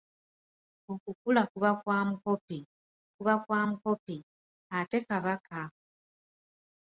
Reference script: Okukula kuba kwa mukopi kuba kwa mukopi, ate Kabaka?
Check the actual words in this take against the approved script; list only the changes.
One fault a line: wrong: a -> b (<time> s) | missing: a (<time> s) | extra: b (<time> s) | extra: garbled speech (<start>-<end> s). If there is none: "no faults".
no faults